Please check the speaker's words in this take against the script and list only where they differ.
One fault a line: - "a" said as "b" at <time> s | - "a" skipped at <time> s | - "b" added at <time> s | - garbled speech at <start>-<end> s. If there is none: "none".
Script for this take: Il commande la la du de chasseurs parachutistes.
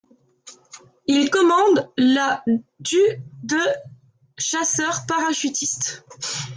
- "la" skipped at 2.4 s